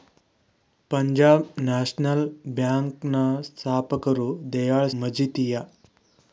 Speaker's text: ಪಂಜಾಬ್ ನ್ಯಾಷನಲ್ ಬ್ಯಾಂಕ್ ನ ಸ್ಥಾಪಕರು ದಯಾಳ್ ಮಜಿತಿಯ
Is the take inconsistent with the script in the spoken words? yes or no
no